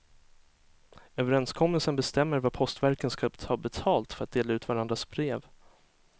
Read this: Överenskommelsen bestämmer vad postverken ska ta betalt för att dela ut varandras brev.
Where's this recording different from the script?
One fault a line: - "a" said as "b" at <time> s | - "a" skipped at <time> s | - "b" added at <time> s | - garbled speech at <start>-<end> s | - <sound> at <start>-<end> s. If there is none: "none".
none